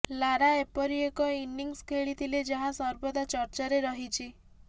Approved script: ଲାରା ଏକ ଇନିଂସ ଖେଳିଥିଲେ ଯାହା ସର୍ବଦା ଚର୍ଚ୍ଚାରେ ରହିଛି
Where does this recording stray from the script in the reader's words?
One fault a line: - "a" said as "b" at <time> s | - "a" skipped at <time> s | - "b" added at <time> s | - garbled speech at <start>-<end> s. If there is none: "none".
- "ଏପରି" added at 0.6 s